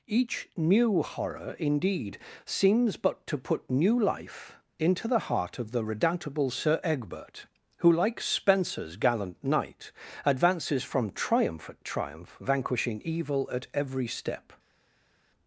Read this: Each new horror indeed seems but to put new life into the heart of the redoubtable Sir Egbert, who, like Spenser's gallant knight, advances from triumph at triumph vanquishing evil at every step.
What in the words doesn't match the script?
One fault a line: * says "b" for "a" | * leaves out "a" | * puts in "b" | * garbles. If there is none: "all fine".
all fine